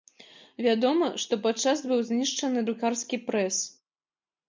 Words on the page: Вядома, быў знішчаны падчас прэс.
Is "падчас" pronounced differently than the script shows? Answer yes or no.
yes